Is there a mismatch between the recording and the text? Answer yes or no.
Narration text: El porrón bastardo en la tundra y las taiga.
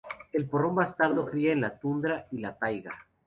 yes